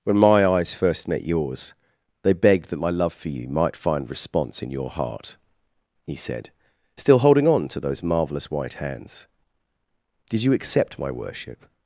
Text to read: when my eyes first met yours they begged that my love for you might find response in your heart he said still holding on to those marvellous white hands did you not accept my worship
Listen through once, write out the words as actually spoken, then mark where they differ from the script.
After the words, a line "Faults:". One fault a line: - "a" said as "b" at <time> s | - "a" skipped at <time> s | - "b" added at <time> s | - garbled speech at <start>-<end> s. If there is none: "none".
when my eyes first met yours they begged that my love for you might find response in your heart he said still holding on to those marvellous white hands did you accept my worship
Faults:
- "not" skipped at 10.5 s